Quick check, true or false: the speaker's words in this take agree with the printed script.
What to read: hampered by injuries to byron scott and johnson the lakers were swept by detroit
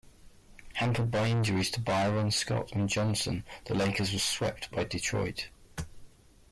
true